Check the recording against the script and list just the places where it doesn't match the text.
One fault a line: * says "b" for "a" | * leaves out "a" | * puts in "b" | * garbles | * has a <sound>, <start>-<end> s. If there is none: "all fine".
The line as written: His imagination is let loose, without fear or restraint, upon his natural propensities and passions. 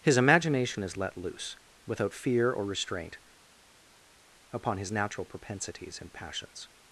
all fine